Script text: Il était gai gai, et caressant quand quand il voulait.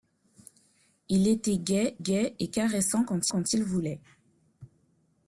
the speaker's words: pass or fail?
pass